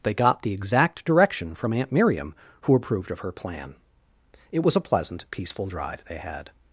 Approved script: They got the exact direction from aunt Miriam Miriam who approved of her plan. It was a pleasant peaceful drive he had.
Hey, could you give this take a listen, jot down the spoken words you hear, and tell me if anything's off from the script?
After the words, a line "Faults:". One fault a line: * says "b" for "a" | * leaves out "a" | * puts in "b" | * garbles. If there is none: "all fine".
They got the exact direction from aunt Miriam who approved of her plan. It was a pleasant peaceful drive they had.
Faults:
* leaves out "Miriam"
* says "they" for "he"